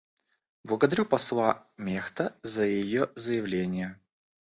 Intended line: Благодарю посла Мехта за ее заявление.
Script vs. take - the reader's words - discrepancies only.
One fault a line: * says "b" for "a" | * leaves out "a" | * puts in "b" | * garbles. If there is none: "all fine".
all fine